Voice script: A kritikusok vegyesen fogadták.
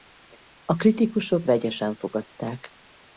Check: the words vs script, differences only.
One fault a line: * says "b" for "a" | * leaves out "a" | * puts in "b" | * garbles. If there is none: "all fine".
all fine